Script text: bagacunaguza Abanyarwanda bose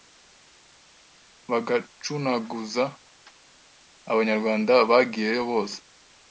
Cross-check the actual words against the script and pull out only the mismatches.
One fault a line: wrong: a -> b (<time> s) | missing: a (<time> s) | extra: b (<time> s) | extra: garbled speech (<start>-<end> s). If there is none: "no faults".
extra: bagiyeyo (4.9 s)